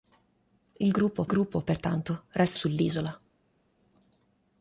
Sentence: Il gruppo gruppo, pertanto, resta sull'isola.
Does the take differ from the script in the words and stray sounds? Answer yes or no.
no